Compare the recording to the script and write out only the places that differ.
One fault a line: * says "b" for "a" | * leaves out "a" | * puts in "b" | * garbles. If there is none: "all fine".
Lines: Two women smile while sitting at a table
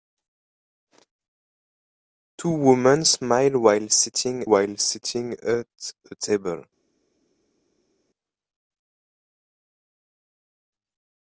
* puts in "while sitting"